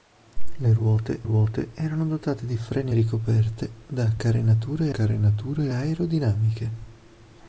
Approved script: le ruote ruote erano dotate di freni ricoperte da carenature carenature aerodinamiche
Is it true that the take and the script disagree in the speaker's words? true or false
false